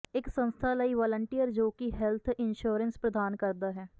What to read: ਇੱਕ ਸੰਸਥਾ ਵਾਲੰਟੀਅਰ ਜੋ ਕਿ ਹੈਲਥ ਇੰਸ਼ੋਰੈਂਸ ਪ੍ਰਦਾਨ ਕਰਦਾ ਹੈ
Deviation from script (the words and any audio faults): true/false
true